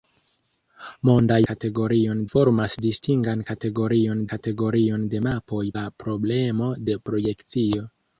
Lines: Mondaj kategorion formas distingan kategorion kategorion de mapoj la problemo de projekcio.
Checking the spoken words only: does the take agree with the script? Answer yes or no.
yes